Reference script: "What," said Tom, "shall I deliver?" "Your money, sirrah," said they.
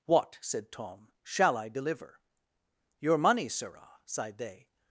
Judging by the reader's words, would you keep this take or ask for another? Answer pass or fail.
fail